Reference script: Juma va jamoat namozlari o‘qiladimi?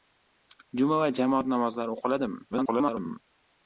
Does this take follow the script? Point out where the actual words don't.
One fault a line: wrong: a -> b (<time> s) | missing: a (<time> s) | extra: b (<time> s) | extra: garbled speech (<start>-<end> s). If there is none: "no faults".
extra: garbled speech (2.5-3.2 s)